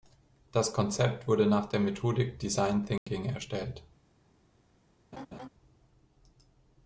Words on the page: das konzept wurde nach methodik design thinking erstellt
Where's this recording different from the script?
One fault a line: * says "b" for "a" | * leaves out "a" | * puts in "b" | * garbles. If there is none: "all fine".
* puts in "der"